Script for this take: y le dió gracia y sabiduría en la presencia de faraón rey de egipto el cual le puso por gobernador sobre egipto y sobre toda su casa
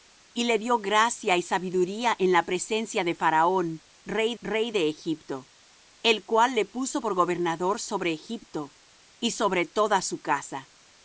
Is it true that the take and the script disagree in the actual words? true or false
true